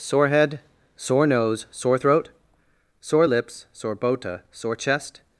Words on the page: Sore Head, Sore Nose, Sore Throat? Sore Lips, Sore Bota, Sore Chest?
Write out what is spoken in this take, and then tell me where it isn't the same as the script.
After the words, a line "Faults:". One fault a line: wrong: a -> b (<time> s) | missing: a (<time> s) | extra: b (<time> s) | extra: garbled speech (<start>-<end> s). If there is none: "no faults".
Sore Head, Sore Nose, Sore Throat? Sore Lips, Sore Bota, Sore Chest?
Faults:
no faults